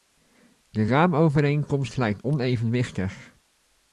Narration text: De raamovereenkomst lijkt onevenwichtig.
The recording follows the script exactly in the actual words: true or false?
true